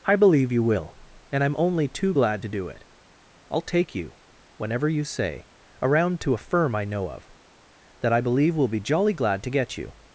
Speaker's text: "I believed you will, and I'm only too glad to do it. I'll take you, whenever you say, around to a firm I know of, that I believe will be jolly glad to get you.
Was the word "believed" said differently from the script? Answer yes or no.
yes